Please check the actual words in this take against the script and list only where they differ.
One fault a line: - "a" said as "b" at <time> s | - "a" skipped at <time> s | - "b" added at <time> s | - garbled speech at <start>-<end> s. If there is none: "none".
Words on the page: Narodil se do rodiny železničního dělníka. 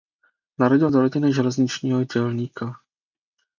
- "se" skipped at 0.9 s